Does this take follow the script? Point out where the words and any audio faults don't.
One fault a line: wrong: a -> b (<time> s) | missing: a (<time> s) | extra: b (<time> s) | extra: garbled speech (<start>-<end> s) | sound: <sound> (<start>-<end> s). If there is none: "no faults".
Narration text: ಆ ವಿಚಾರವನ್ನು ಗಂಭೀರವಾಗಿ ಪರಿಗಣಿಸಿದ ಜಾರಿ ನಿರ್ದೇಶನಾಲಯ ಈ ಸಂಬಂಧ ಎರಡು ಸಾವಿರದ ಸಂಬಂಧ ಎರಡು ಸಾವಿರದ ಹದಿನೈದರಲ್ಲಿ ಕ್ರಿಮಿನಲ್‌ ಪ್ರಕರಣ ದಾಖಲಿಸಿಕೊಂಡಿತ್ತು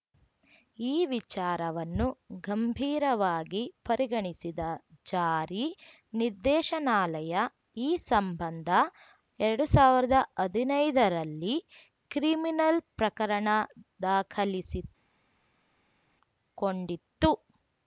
wrong: ಆ -> ಈ (0.8 s)
missing: ಸಂಬಂಧ ಎರಡು ಸಾವಿರದ (10.1 s)